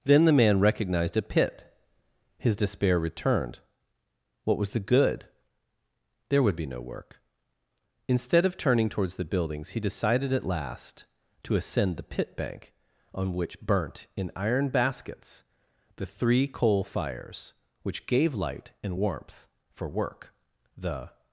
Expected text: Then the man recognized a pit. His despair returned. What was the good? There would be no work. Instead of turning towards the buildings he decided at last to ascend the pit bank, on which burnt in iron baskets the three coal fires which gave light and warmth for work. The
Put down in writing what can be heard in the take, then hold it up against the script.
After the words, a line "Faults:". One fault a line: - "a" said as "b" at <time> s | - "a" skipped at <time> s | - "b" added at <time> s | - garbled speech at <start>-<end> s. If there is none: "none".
Then the man recognized a pit. His despair returned. What was the good? There would be no work. Instead of turning towards the buildings he decided at last to ascend the pit bank, on which burnt in iron baskets the three coal fires which gave light and warmth for work. The
Faults:
none